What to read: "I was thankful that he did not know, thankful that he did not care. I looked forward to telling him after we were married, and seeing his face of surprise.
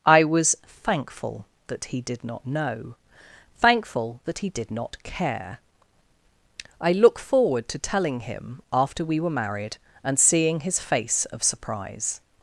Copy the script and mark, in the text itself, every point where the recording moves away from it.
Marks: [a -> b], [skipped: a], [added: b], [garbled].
"I was thankful that he did not know, thankful that he did not care. I [looked -> look] forward to telling him after we were married, and seeing his face of surprise.